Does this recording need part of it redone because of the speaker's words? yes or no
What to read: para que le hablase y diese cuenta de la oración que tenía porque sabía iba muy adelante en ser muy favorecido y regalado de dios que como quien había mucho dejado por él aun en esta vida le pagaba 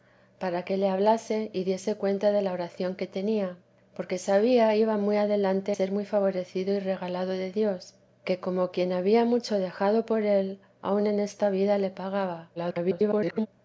yes